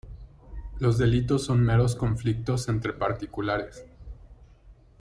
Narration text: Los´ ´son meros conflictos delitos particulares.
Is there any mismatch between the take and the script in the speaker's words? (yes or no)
yes